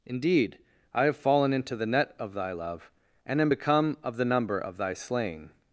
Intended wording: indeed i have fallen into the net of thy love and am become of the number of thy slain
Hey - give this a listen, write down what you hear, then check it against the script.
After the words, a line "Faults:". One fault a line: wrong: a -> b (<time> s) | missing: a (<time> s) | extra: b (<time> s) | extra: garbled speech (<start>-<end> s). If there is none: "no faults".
indeed i have fallen into the net of thy love and am become of the number of thy slain
Faults:
no faults